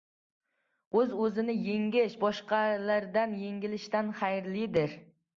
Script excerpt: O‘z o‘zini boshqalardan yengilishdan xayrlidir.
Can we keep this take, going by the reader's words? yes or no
no